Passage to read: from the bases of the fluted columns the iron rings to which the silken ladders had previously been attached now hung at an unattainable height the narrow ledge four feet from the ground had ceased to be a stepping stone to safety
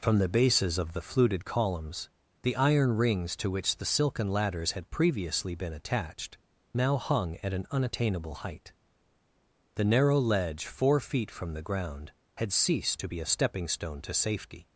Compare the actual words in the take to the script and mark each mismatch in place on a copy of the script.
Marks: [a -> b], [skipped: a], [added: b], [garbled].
from the bases of the fluted columns the iron rings to which the silken ladders had previously been attached now hung at an unattainable height the narrow ledge four feet from the ground had ceased to be a stepping stone to safety